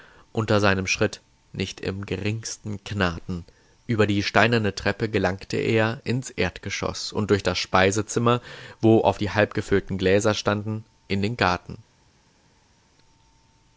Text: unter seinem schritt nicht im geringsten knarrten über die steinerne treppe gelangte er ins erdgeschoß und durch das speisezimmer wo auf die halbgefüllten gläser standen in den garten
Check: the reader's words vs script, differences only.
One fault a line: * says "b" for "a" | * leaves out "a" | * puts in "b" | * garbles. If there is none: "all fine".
all fine